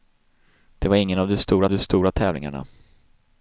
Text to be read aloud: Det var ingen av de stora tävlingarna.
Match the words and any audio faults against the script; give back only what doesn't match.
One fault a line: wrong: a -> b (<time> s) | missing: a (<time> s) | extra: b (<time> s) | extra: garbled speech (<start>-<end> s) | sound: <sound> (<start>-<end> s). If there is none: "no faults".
extra: de stora (1.7 s)